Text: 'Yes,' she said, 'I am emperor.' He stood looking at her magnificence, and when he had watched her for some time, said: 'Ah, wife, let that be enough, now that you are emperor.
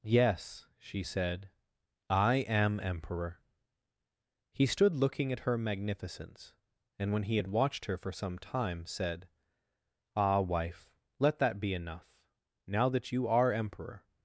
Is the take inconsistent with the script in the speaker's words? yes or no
no